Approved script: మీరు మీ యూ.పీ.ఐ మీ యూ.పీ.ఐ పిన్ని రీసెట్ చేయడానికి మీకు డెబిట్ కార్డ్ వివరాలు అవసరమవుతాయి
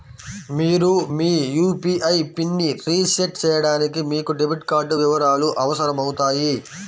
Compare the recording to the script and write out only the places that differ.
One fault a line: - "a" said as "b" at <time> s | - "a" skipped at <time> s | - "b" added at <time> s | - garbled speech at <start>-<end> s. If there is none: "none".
- "మీ యూ.పీ.ఐ" skipped at 2.1 s